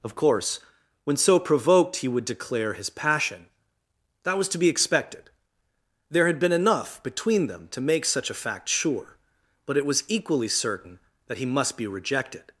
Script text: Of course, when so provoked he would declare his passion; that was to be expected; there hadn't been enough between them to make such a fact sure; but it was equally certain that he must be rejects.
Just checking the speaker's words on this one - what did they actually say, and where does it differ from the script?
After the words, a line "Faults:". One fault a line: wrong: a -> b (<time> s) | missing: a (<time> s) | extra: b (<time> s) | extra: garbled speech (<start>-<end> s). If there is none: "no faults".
Of course, when so provoked he would declare his passion; that was to be expected; there had been enough between them to make such a fact sure; but it was equally certain that he must be rejected.
Faults:
wrong: hadn't -> had (6.3 s)
wrong: rejects -> rejected (11.9 s)